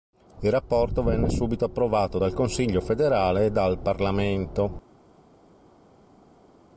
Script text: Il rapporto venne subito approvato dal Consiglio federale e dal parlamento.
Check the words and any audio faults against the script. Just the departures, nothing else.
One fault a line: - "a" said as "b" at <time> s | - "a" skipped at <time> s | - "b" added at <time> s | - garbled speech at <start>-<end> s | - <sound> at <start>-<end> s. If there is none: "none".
none